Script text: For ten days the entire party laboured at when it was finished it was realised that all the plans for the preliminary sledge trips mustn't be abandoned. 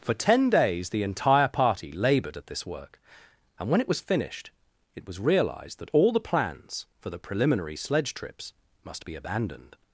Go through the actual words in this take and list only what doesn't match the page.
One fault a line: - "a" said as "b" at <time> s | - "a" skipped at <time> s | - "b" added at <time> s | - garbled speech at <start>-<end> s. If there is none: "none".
- "this work and" added at 2.5 s
- "mustn't" said as "must" at 8.8 s